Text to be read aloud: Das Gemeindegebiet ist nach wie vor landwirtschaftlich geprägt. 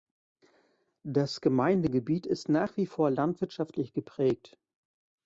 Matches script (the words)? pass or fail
pass